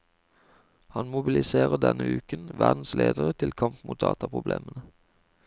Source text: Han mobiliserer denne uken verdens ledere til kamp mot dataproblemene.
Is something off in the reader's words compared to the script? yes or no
no